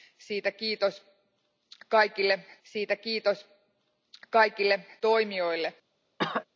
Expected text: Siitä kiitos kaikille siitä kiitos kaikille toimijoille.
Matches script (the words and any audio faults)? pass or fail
fail